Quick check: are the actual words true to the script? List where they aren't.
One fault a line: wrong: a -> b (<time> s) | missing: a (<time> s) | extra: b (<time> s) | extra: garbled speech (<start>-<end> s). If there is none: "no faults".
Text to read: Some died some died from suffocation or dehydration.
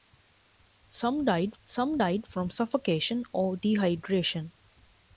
no faults